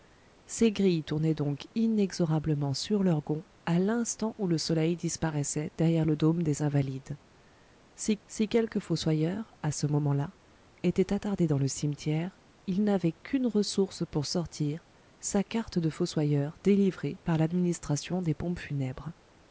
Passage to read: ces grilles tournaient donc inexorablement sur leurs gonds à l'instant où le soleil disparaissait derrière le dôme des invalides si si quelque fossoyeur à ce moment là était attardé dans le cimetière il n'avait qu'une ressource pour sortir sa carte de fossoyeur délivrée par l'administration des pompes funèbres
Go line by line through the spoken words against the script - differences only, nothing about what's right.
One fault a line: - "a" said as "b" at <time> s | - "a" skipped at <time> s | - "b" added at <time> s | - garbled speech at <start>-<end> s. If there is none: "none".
none